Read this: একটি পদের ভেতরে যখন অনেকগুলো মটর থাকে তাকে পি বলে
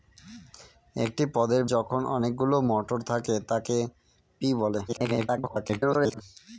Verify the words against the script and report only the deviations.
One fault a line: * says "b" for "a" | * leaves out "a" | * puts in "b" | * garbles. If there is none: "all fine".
* leaves out "ভেতরে"
* garbles